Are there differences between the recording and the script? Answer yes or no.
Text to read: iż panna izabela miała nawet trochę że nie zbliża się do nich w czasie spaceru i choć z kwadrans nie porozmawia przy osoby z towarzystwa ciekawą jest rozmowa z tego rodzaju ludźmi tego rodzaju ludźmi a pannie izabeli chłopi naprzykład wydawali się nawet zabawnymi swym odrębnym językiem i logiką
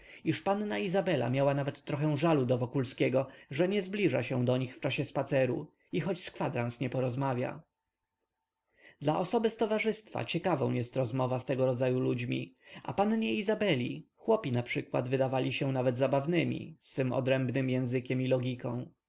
yes